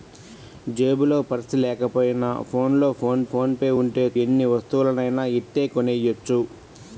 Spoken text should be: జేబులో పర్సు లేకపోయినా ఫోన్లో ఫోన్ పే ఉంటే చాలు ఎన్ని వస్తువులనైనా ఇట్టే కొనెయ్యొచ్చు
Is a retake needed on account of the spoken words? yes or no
yes